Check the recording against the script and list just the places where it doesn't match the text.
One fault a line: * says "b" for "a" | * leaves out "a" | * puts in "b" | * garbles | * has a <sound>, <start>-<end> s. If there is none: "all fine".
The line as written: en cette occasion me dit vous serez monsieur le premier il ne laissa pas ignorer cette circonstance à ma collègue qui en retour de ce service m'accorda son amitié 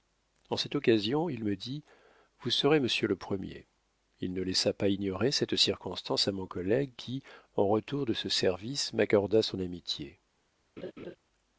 * puts in "il"
* says "mon" for "ma"
* has a laugh, 10.8-11.2 s